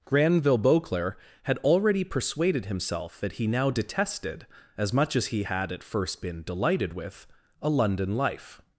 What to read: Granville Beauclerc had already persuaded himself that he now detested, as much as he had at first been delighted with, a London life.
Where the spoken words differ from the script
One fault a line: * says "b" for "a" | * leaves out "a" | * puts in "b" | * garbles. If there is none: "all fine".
all fine